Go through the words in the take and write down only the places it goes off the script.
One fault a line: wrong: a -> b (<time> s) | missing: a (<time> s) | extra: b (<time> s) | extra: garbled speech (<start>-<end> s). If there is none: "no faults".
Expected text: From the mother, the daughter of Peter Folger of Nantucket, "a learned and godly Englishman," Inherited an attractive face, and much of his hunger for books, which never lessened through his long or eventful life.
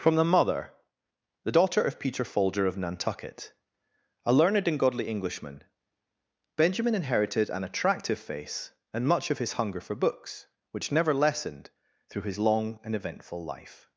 extra: Benjamin (6.5 s)
wrong: or -> and (12.8 s)